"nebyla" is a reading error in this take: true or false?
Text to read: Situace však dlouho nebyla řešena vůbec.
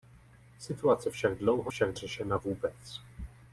true